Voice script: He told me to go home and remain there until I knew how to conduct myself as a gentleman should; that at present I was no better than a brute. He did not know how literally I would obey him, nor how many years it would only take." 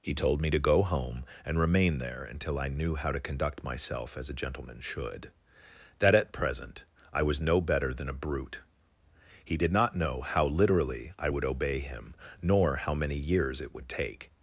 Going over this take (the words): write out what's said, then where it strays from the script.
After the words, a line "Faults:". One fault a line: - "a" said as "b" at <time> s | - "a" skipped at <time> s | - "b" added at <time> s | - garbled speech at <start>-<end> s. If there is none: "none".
He told me to go home and remain there until I knew how to conduct myself as a gentleman should; that at present I was no better than a brute. He did not know how literally I would obey him, nor how many years it would take."
Faults:
- "only" skipped at 13.9 s